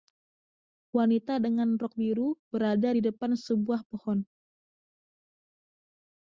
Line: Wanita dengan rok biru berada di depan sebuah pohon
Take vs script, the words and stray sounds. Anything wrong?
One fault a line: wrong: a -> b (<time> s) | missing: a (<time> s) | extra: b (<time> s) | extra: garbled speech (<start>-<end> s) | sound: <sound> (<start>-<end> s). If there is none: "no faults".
no faults